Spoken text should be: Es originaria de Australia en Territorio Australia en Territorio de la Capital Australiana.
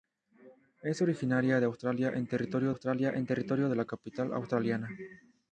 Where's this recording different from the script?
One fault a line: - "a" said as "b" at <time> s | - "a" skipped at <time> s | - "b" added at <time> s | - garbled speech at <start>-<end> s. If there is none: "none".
none